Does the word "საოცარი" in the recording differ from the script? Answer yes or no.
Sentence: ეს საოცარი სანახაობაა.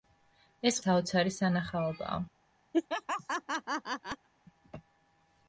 no